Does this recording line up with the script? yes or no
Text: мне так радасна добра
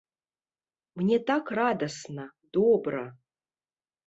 yes